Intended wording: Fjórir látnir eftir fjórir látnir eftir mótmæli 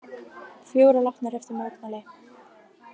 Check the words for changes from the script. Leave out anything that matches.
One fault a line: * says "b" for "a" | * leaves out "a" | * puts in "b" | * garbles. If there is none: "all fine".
* leaves out "fjórir látnir eftir"